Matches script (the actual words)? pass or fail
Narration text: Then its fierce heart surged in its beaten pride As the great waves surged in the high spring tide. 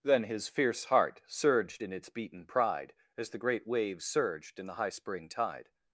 fail